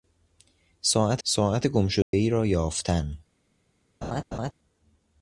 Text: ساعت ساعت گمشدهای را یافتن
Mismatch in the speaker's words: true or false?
false